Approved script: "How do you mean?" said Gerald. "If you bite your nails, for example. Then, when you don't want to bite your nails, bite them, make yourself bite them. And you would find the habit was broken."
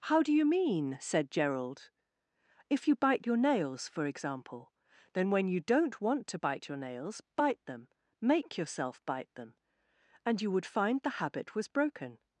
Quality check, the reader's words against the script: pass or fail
pass